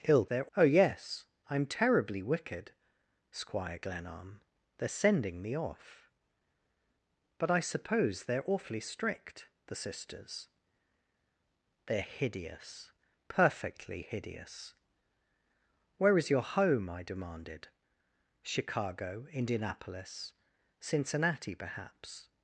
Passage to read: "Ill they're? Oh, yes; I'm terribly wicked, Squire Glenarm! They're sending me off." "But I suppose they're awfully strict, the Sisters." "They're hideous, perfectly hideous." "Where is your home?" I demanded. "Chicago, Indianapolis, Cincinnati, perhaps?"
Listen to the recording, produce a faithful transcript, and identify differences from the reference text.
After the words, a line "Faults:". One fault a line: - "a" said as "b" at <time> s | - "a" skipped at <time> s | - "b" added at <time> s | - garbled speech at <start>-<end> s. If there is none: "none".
"Ill they're? Oh, yes; I'm terribly wicked, Squire Glenarm! They're sending me off." "But I suppose they're awfully strict, the Sisters." "They're hideous, perfectly hideous." "Where is your home?" I demanded. "Chicago, Indianapolis, Cincinnati, perhaps?"
Faults:
none